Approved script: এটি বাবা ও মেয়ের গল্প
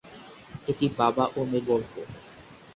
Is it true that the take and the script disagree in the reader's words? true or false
false